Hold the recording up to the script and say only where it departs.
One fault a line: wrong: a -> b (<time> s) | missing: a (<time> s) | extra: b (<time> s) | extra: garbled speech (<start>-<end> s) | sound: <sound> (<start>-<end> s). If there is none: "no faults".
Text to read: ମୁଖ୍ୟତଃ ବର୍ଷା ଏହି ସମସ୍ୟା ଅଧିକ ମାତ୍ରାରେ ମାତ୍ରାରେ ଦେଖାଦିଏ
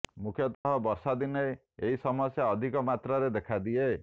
sound: dropout (0.5-0.7 s)
extra: ଦିନେ (1.2 s)
missing: ମାତ୍ରାରେ (3.3 s)